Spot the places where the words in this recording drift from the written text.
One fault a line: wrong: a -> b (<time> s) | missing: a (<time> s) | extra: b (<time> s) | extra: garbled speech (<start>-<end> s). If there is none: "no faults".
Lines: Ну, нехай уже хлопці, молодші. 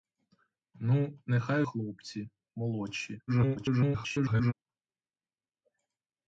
missing: уже (1.6 s)
extra: garbled speech (3.3-4.5 s)